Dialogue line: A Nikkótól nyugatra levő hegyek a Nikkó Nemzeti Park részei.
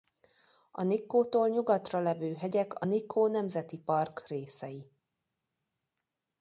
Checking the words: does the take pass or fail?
pass